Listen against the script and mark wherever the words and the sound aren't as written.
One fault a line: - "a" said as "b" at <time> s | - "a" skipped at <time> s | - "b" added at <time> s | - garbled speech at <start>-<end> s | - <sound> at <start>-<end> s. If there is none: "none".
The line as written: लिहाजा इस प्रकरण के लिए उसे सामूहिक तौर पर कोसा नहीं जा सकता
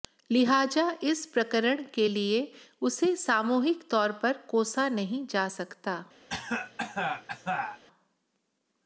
- cough at 6.3-7.8 s